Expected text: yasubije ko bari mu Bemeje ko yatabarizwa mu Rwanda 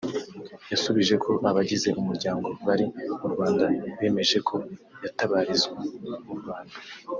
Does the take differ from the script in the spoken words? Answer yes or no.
yes